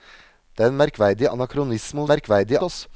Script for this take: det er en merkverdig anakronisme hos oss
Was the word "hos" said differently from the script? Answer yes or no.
yes